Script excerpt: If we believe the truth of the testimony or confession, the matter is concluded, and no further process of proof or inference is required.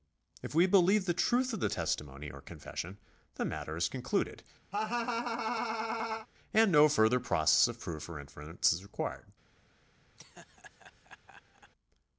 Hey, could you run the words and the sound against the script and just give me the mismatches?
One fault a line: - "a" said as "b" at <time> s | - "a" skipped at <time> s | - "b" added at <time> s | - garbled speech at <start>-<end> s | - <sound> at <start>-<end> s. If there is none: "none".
- laugh at 4.7-6.3 s
- laugh at 10.2-11.7 s